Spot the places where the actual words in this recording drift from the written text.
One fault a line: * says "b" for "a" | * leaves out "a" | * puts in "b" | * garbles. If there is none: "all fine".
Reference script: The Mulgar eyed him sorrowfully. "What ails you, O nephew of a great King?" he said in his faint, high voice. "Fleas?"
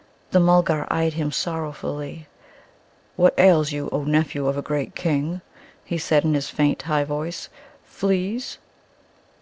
all fine